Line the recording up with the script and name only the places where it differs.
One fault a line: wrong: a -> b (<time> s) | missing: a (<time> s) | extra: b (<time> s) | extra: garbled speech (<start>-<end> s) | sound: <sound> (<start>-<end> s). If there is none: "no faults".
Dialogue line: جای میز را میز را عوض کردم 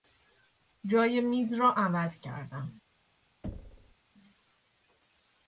missing: میز را (1.7 s)
sound: thud (3.4-4.0 s)